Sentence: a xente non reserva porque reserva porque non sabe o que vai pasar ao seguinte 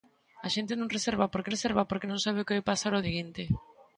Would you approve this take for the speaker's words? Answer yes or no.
yes